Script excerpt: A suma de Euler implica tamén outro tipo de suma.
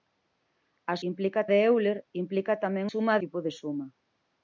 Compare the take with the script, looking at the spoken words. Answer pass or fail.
fail